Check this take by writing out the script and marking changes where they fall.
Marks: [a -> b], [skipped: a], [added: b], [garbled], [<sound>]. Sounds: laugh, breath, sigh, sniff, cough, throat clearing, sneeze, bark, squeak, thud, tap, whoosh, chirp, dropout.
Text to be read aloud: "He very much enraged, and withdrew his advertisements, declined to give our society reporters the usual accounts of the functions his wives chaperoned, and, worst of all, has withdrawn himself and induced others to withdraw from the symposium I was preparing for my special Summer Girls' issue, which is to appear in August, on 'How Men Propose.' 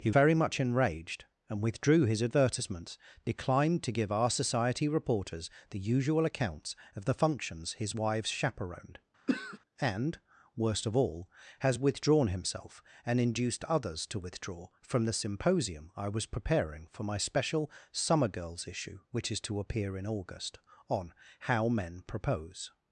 "He very much enraged, and withdrew his advertisements, declined to give our society reporters the usual accounts of the functions his wives chaperoned, [throat clearing] and, worst of all, has withdrawn himself and induced others to withdraw from the symposium I was preparing for my special Summer Girls' issue, which is to appear in August, on 'How Men Propose.'